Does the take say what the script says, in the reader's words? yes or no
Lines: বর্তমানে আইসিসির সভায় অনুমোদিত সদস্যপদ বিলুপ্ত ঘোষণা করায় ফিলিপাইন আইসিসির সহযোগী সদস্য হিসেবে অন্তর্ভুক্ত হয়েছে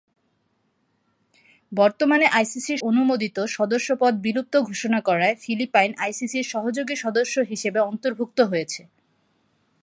no